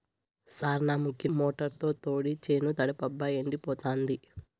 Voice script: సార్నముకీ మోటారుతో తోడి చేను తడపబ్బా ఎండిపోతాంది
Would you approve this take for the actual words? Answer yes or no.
yes